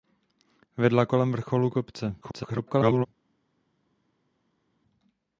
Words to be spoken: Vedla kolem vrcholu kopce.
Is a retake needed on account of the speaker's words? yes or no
yes